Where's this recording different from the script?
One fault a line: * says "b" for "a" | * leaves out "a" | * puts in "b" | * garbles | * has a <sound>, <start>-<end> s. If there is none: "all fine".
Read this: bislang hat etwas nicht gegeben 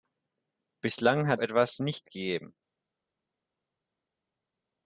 all fine